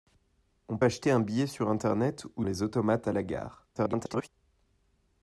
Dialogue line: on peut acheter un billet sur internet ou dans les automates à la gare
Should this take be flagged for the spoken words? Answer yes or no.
yes